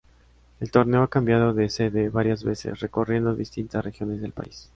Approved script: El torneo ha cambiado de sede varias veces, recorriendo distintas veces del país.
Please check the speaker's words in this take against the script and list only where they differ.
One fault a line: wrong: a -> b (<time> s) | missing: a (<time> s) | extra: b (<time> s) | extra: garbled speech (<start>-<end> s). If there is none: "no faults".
wrong: veces -> regiones (3.8 s)